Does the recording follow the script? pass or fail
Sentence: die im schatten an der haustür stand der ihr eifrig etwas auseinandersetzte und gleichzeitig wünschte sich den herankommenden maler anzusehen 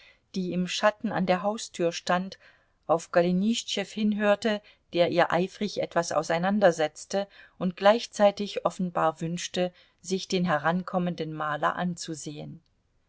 fail